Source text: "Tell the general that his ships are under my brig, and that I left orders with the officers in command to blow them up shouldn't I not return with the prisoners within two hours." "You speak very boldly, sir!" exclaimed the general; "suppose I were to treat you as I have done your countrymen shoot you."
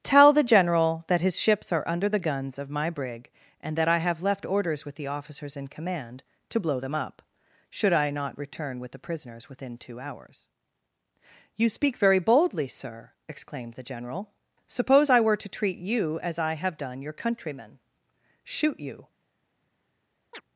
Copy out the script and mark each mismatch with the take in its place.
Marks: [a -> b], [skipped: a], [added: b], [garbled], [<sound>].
"Tell the general that his ships are under [added: the guns of] my brig, and that I [added: have] left orders with the officers in command to blow them up [shouldn't -> should] I not return with the prisoners within two hours." "You speak very boldly, sir!" exclaimed the general; "suppose I were to treat you as I have done your countrymen shoot you." [chirp]